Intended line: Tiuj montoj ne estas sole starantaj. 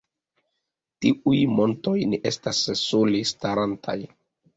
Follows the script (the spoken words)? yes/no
yes